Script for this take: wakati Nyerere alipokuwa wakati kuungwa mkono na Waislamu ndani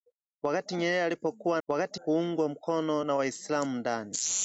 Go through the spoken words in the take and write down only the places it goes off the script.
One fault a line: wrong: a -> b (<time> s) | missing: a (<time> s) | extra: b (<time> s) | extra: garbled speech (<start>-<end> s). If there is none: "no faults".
no faults